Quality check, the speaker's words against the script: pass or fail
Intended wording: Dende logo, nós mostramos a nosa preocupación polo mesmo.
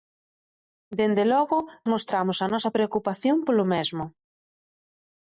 fail